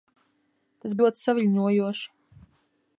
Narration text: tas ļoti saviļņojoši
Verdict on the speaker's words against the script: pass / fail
pass